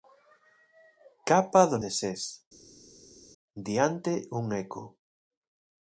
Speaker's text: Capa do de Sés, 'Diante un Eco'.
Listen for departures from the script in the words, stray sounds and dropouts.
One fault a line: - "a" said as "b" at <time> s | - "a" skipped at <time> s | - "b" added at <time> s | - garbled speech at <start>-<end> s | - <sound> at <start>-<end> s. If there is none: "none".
none